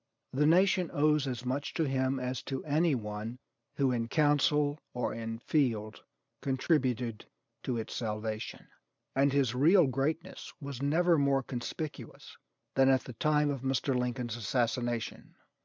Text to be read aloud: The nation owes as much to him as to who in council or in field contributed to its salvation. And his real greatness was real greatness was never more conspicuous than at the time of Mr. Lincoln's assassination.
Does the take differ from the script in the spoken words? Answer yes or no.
yes